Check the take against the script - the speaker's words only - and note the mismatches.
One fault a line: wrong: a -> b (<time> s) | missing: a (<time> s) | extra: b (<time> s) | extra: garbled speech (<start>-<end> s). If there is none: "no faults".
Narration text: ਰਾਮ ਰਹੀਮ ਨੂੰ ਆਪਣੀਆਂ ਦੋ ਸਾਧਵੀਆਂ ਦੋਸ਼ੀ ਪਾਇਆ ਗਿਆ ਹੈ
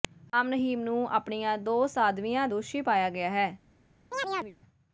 no faults